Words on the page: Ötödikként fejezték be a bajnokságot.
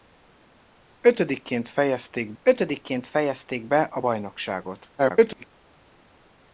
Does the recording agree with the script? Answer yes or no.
no